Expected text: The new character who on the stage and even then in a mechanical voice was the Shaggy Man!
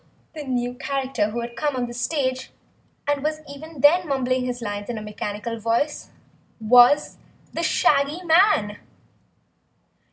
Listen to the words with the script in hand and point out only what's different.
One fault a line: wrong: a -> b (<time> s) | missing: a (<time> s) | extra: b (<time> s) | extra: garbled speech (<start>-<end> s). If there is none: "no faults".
extra: had come (1.4 s)
extra: was (3.2 s)
extra: mumbling his lines (4.1 s)